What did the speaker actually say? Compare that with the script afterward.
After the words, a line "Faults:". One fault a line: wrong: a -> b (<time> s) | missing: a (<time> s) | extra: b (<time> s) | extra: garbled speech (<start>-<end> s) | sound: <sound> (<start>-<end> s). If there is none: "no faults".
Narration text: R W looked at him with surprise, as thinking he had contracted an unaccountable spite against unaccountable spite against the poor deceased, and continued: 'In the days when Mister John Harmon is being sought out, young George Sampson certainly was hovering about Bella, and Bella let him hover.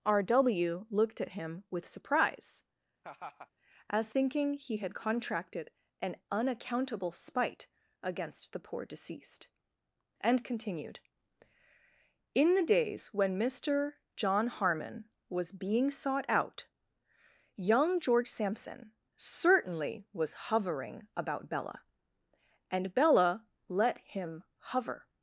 R W looked at him with surprise, as thinking he had contracted an unaccountable spite against the poor deceased, and continued: 'In the days when Mister John Harmon was being sought out, young George Sampson certainly was hovering about Bella, and Bella let him hover.
Faults:
sound: laugh (3.0-3.5 s)
missing: unaccountable spite against (8.5 s)
wrong: is -> was (15.3 s)